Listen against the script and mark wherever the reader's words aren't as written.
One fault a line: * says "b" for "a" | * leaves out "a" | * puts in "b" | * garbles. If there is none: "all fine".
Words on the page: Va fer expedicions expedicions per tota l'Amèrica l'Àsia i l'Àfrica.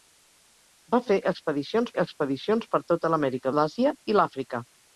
all fine